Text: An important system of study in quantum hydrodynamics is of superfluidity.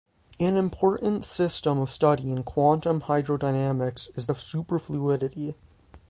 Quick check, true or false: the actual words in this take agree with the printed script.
true